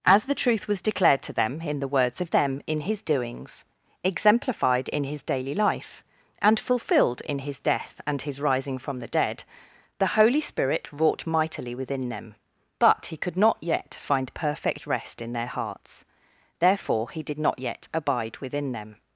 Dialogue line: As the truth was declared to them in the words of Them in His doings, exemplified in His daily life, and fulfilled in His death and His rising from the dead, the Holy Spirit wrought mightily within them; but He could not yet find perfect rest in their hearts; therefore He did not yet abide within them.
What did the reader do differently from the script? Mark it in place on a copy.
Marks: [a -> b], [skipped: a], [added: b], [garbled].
As the truth was declared to them in the words of Them in His doings, exemplified in His daily life, and fulfilled in His death and His rising from the dead, the Holy Spirit wrought mightily within them; but He could not yet find perfect rest in their hearts; therefore He did not yet abide within them.